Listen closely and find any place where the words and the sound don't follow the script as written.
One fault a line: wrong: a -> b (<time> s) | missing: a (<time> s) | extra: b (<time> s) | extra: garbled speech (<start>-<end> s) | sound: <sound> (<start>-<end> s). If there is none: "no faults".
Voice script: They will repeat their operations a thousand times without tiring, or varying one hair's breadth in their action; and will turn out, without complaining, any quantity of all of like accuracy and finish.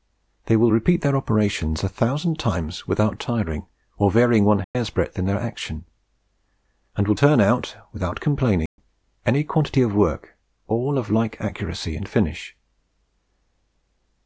sound: dropout (4.6-4.7 s)
sound: dropout (8.7-8.8 s)
extra: work (10.0 s)